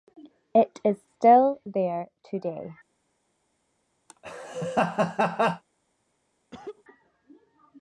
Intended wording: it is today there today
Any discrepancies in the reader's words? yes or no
yes